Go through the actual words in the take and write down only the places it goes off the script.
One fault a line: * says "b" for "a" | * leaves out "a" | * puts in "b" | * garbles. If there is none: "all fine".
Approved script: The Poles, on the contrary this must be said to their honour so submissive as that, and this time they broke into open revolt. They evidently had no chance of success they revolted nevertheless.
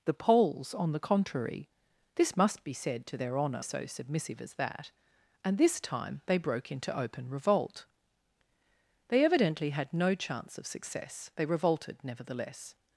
all fine